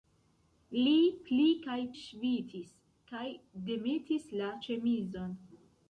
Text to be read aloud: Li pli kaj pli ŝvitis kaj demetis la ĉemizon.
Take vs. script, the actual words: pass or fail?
fail